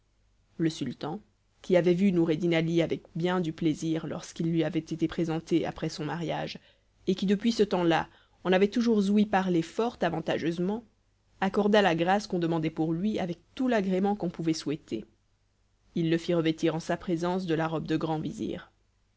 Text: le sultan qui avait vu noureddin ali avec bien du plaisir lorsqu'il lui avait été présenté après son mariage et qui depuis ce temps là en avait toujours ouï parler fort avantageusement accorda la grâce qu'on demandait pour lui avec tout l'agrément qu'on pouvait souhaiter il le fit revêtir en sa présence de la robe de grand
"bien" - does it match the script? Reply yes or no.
yes